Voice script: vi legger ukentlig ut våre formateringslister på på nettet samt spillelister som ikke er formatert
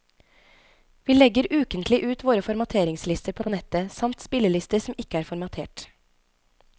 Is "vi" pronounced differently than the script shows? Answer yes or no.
no